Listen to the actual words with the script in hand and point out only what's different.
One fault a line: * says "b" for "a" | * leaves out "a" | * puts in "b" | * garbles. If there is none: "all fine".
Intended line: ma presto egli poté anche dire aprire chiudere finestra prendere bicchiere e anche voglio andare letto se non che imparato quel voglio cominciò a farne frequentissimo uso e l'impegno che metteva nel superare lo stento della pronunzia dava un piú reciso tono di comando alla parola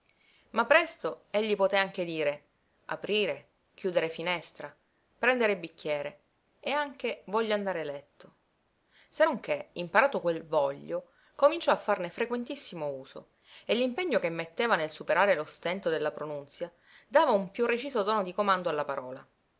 all fine